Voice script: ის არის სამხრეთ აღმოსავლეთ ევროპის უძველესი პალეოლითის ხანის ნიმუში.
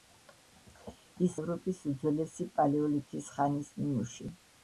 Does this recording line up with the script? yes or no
no